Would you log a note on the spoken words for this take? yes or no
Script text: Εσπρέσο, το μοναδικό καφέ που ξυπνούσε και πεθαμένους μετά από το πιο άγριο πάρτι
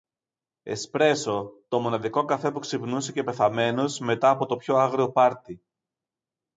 no